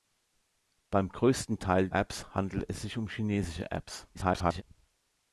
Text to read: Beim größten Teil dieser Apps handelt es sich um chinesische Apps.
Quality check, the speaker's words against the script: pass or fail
fail